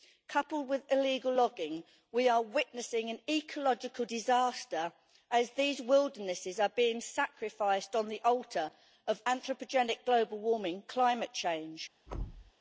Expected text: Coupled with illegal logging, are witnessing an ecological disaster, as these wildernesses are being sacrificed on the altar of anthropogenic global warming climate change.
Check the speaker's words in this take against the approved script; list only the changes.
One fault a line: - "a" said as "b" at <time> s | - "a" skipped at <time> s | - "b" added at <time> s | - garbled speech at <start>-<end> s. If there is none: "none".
- "we" added at 2.1 s